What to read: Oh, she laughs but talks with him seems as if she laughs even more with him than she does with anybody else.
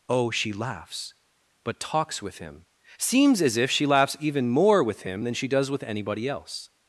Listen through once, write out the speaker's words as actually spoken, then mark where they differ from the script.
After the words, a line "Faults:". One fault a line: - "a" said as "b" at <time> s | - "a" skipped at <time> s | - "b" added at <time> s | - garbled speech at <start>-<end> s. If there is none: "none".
Oh, she laughs but talks with him seems as if she laughs even more with him than she does with anybody else.
Faults:
none